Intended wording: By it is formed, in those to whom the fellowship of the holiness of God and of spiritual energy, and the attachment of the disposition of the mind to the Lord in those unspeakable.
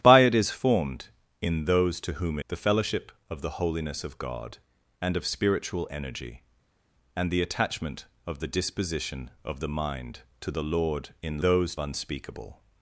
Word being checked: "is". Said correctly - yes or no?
yes